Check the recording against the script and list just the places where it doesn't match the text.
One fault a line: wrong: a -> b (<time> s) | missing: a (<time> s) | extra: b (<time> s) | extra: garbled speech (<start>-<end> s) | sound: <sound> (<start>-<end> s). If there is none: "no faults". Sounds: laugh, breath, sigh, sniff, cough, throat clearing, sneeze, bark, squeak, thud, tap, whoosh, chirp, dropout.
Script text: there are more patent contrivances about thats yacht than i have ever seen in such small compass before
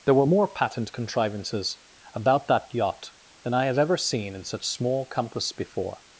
wrong: are -> were (0.1 s)
wrong: thats -> that (2.5 s)